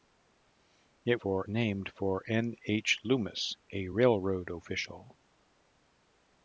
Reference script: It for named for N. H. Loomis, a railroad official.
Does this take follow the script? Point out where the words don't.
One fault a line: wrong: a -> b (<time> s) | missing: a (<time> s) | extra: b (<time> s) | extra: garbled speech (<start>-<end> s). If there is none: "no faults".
no faults